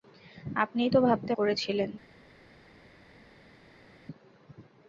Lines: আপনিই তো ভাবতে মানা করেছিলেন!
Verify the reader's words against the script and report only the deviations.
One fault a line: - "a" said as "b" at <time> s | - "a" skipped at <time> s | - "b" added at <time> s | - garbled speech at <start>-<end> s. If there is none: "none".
- "মানা" skipped at 1.3 s